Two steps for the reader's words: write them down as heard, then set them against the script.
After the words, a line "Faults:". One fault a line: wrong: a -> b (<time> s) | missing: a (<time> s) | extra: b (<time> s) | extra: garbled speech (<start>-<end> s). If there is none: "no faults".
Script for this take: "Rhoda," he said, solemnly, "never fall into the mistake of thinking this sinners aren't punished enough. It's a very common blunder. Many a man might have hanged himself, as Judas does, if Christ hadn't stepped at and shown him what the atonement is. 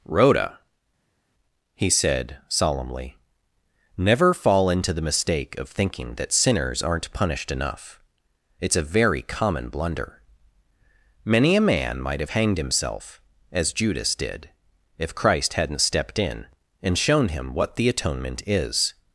"Rhoda," he said, solemnly, "never fall into the mistake of thinking that sinners aren't punished enough. It's a very common blunder. Many a man might have hanged himself, as Judas did, if Christ hadn't stepped in and shown him what the atonement is.
Faults:
wrong: this -> that (6.1 s)
wrong: does -> did (14.1 s)
wrong: at -> in (16.2 s)